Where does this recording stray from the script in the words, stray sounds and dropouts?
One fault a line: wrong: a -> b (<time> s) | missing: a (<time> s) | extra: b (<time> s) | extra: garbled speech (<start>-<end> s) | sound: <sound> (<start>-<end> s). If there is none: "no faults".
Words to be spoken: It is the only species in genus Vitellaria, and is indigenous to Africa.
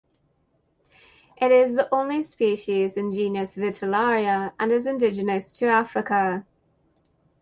no faults